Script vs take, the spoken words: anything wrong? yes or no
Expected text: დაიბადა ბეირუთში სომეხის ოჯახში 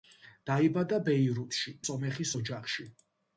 no